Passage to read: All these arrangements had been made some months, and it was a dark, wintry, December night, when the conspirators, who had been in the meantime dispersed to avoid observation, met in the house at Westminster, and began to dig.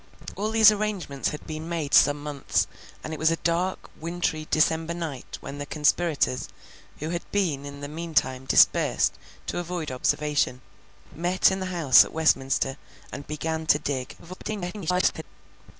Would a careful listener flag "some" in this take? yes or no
no